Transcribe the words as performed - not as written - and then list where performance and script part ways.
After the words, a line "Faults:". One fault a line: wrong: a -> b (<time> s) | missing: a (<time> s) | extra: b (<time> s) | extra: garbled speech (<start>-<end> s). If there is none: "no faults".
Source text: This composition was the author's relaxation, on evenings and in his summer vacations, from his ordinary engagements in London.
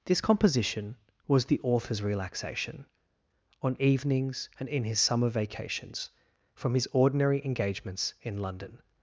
This composition was the author's relaxation, on evenings and in his summer vacations, from his ordinary engagements in London.
Faults:
no faults